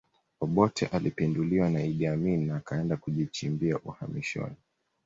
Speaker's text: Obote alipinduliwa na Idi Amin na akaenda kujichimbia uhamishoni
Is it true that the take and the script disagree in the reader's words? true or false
false